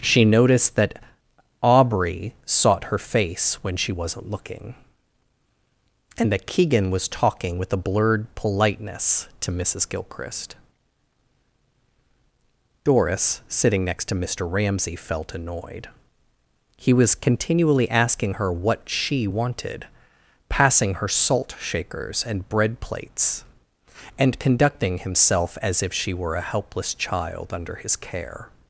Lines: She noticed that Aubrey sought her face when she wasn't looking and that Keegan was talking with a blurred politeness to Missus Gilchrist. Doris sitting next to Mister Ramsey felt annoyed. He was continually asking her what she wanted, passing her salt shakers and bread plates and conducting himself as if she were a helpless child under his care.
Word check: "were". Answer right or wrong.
right